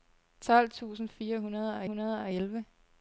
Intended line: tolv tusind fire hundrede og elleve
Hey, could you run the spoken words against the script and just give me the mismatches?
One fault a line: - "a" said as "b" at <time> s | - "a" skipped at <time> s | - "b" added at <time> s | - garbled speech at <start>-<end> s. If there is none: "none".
- "hundrede og" added at 1.8 s